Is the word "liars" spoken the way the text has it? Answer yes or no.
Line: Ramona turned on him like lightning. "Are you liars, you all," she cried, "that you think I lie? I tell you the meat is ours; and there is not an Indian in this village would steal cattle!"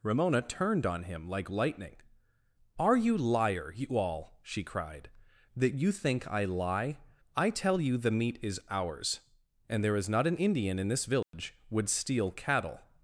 no